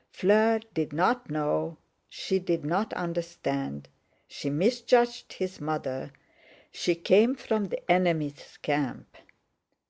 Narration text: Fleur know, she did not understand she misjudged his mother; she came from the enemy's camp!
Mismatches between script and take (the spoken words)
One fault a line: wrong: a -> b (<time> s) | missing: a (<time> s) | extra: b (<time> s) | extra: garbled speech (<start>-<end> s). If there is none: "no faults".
extra: did not (0.7 s)